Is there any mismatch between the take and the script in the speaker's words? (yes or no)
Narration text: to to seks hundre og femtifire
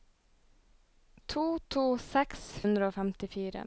no